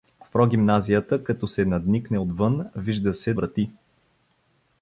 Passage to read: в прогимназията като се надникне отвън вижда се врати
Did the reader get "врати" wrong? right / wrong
right